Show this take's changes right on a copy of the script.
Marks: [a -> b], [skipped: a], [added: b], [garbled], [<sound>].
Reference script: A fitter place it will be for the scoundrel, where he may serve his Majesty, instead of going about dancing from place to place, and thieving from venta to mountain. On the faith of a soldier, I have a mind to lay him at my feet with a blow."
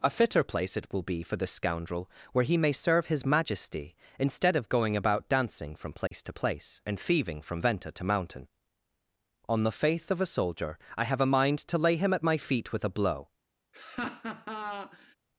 A fitter place it will be for the scoundrel, where he may serve his Majesty, instead of going about dancing from place [dropout] to place, and thieving from venta to mountain. On the faith of a soldier, I have a mind to lay him at my feet with a blow." [laugh]